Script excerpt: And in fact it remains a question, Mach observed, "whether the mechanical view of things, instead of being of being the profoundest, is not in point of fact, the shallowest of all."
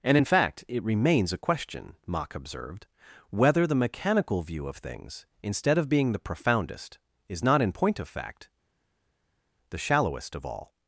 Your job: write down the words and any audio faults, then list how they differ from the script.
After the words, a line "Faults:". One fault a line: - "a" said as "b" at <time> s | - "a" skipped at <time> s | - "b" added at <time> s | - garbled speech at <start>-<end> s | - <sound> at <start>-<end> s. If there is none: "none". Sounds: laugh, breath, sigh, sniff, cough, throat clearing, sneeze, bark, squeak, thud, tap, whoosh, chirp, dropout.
And in fact it remains a question, Mach observed, "whether the mechanical view of things, instead of being the profoundest, is not in point of fact, the shallowest of all."
Faults:
- "of being" skipped at 6.1 s